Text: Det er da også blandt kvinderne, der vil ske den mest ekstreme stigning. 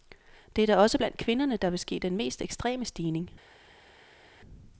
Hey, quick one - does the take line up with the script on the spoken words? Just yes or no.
yes